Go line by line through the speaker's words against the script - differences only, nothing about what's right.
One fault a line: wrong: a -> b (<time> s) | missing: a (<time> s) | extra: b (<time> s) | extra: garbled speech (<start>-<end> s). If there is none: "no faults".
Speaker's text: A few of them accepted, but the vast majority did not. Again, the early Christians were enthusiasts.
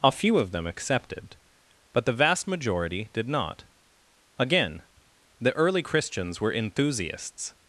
no faults